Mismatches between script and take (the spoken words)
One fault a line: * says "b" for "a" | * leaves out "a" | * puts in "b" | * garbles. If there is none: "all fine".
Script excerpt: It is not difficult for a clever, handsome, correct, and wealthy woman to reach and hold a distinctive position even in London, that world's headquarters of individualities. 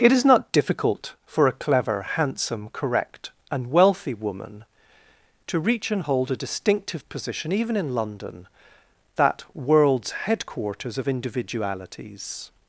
all fine